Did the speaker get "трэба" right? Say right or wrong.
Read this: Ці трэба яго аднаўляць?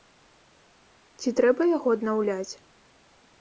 right